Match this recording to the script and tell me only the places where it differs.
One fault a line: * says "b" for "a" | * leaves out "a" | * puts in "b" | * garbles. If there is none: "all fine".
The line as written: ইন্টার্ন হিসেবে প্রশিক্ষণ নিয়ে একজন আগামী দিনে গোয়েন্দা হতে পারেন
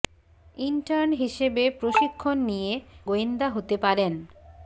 * leaves out "একজন আগামী দিনে"